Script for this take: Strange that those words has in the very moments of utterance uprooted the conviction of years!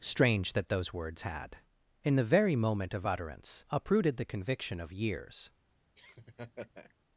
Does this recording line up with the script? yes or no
no